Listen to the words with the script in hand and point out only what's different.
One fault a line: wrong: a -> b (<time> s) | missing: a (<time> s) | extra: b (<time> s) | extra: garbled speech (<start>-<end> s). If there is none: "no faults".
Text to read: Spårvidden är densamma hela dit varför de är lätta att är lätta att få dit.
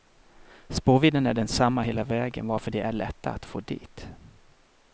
wrong: dit -> vägen (2.0 s)
missing: är lätta att (3.4 s)